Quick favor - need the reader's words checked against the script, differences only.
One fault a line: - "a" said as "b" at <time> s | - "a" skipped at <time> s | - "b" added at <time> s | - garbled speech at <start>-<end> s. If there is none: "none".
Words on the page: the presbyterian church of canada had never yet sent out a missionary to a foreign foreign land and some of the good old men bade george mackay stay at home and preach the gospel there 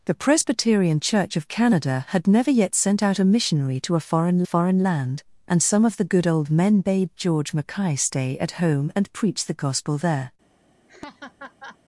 none